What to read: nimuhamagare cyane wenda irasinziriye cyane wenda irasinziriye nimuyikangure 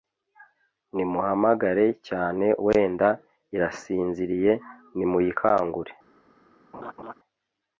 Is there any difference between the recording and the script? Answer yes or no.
yes